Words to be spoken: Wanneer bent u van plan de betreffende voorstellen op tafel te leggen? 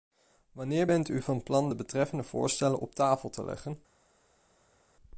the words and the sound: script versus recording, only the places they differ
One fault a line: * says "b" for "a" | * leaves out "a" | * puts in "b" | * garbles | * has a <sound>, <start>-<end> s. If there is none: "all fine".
all fine